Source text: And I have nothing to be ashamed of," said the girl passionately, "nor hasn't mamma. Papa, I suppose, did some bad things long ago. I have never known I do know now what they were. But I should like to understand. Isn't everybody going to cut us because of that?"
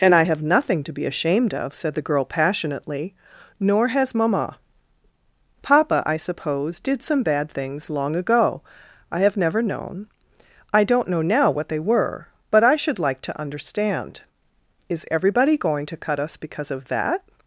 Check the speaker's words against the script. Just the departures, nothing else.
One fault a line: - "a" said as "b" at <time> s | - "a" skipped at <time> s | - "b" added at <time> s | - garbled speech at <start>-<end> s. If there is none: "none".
- "hasn't" said as "has" at 3.9 s
- "do" said as "don't" at 10.8 s
- "Isn't" said as "Is" at 14.9 s